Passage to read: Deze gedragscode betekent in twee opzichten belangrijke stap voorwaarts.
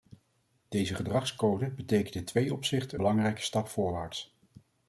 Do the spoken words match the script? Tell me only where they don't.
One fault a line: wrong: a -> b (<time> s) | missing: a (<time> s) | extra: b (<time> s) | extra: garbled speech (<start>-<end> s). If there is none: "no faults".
no faults